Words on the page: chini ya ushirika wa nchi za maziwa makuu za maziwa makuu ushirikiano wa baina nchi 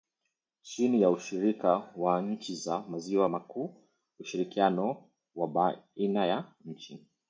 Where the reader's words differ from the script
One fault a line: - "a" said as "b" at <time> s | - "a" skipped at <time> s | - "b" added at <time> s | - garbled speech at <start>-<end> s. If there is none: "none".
- "za maziwa makuu" skipped at 3.7 s
- "ya" added at 6.3 s